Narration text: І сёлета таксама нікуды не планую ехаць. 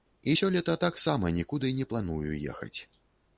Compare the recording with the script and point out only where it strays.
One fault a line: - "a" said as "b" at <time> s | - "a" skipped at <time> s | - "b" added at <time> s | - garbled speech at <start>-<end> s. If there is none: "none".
none